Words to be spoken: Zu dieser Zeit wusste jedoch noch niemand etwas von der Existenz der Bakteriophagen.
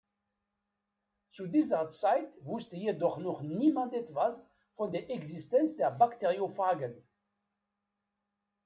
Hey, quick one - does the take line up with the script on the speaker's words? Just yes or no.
yes